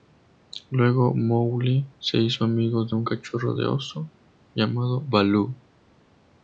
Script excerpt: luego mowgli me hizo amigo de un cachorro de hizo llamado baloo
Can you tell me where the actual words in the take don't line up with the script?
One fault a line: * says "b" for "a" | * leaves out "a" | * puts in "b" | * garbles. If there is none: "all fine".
* says "se" for "me"
* says "oso" for "hizo"